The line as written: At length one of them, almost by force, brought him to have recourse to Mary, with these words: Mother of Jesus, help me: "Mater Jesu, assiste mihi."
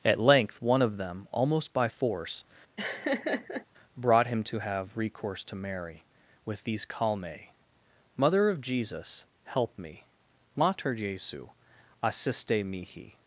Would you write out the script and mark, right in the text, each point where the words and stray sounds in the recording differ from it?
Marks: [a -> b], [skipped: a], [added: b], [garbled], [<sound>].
At length one of them, almost by force, [laugh] brought him to have recourse to Mary, with these [words: -> calme] Mother of Jesus, help me: "Mater Jesu, assiste mihi."